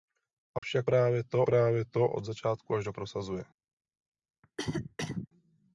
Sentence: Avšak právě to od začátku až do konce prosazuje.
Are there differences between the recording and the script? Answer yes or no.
yes